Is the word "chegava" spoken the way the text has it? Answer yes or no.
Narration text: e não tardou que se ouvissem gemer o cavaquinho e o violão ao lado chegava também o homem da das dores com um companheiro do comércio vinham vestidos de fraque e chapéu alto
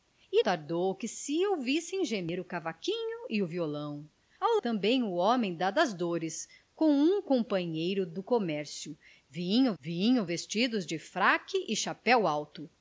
no